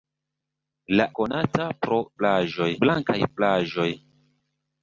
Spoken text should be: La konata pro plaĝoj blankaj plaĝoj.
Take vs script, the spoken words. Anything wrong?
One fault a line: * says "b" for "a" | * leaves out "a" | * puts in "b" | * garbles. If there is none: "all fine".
all fine